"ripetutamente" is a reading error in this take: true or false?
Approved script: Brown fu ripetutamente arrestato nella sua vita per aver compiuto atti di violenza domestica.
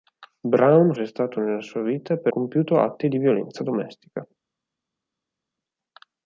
true